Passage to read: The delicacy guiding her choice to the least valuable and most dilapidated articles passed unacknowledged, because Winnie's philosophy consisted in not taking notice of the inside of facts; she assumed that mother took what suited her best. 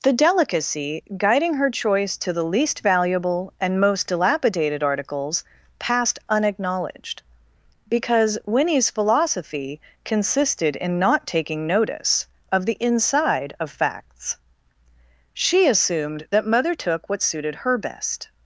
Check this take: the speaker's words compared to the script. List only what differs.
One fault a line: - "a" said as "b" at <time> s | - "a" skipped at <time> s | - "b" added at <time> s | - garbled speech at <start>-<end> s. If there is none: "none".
none